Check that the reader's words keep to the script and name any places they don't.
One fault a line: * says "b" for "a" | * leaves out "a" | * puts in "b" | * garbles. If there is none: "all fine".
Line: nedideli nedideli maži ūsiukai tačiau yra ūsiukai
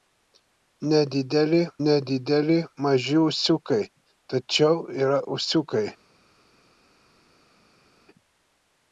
all fine